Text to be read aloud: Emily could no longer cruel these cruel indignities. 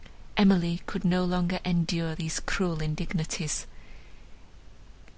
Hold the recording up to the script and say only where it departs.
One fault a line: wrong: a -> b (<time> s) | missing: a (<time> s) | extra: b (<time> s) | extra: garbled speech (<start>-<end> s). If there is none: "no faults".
wrong: cruel -> endure (1.6 s)